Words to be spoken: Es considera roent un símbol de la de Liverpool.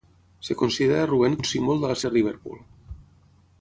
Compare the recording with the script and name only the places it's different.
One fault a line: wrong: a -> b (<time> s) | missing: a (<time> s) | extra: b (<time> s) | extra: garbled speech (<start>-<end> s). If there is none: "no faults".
no faults